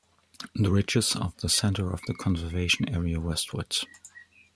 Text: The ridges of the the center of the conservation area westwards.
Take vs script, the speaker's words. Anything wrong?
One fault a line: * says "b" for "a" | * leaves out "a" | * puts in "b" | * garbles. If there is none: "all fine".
all fine